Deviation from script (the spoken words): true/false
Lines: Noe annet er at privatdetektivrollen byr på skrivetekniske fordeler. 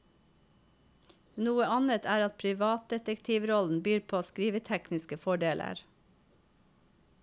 false